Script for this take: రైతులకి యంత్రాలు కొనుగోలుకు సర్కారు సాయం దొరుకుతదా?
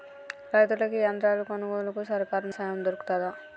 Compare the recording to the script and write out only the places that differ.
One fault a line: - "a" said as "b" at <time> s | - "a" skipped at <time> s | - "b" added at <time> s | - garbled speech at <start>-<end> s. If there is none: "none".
none